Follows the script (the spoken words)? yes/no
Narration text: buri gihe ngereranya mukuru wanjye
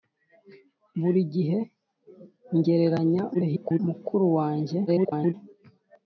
no